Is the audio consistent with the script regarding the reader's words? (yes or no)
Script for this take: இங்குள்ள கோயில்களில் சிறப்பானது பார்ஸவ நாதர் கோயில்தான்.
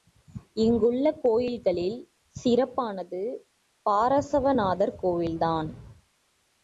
yes